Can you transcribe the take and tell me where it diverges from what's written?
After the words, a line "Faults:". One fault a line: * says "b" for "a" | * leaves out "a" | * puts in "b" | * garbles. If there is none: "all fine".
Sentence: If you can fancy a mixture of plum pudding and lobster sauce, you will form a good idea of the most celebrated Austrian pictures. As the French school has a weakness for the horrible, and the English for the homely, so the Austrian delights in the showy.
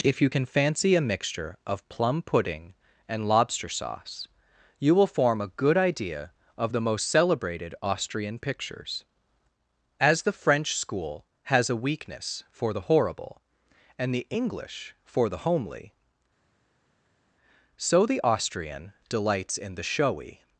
If you can fancy a mixture of plum pudding and lobster sauce, you will form a good idea of the most celebrated Austrian pictures. As the French school has a weakness for the horrible, and the English for the homely, so the Austrian delights in the showy.
Faults:
all fine